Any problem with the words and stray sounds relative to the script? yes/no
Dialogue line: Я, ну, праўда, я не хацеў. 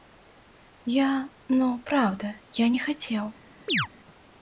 yes